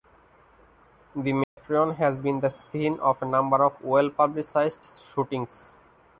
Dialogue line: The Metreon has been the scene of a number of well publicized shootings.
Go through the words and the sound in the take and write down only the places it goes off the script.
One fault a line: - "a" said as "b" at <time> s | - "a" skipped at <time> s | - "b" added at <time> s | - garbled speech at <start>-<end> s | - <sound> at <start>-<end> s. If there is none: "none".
- dropout at 1.4-1.6 s